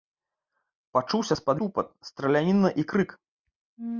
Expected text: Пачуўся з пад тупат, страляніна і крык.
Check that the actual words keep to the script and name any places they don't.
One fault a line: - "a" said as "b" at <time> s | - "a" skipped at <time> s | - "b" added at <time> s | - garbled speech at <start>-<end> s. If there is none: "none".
none